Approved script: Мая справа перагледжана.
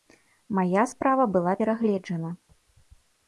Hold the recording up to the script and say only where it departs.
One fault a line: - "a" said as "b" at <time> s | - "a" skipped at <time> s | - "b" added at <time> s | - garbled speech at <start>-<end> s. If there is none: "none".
- "была" added at 1.3 s